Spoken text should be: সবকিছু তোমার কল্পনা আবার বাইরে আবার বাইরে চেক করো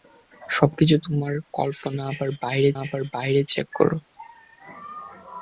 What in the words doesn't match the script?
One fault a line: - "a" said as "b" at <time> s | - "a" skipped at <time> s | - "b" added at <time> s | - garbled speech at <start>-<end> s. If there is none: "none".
none